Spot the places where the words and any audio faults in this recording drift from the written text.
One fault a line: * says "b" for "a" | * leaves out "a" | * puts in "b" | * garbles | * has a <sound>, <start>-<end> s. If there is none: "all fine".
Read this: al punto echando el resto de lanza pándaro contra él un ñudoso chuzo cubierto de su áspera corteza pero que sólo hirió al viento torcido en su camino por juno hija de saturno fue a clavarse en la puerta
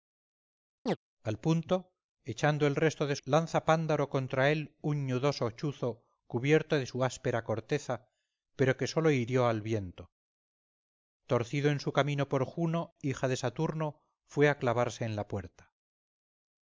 * has a chirp, 0.9-1.0 s